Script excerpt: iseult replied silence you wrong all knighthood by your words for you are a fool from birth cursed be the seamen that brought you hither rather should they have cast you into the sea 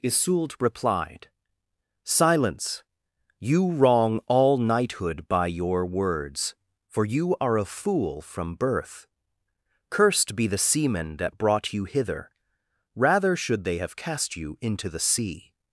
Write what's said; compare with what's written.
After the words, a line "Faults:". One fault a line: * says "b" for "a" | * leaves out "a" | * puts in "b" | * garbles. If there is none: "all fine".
iseult replied silence you wrong all knighthood by your words for you are a fool from birth cursed be the seamen that brought you hither rather should they have cast you into the sea
Faults:
all fine